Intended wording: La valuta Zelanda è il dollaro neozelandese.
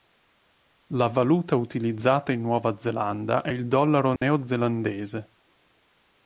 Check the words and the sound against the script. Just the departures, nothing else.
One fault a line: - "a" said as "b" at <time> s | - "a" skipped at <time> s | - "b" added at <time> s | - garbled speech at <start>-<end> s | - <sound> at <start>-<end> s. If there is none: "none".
- "utilizzata in Nuova" added at 1.6 s
- dropout at 4.2-4.2 s